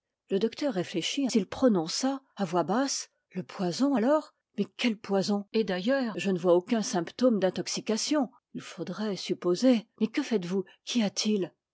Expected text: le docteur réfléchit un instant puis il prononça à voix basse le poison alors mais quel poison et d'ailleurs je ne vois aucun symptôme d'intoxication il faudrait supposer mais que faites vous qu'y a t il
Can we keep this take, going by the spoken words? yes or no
no